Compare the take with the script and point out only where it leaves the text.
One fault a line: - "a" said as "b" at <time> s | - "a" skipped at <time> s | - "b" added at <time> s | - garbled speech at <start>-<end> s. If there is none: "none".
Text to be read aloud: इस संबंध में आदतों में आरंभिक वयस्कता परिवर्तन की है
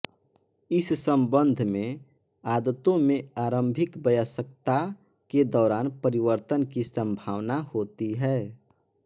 - "के दौरान" added at 5.3 s
- "संभावना होती" added at 6.8 s